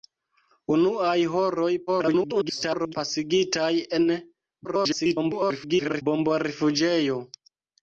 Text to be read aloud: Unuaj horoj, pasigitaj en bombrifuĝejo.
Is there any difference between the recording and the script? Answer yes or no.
yes